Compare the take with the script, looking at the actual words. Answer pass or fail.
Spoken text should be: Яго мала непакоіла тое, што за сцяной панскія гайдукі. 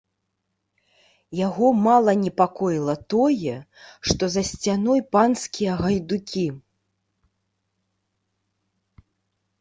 pass